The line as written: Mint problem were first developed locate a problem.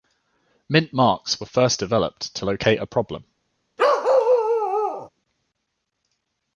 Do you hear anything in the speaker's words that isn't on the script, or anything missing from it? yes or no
yes